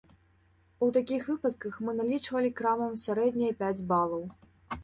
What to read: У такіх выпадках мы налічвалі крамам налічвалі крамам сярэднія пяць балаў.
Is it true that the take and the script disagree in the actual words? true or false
true